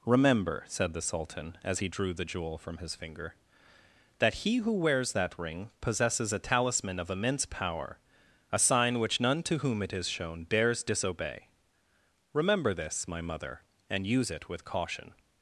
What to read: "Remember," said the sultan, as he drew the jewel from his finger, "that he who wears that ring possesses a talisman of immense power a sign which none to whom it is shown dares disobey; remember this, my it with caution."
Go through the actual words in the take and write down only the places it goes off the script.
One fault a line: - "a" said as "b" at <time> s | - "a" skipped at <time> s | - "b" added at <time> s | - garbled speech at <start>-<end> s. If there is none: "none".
- "mother and use" added at 13.2 s